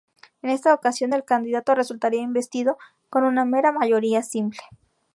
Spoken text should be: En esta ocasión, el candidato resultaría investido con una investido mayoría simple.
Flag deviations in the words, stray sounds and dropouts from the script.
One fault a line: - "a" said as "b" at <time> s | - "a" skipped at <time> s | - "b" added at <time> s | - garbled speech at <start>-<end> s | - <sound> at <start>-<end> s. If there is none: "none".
- "investido" said as "mera" at 3.4 s